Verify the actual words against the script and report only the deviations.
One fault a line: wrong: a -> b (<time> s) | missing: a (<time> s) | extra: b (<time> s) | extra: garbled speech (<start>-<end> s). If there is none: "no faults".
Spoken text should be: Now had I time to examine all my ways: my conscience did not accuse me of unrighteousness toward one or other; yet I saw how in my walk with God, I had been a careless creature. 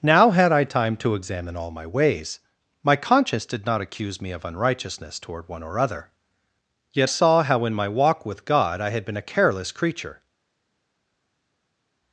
missing: I (7.1 s)